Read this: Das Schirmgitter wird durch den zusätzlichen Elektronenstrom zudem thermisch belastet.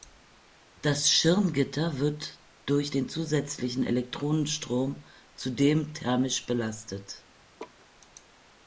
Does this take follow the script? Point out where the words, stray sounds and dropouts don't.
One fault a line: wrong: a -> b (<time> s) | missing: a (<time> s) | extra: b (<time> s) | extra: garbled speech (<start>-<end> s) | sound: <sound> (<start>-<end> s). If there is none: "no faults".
sound: laugh (7.6-7.9 s)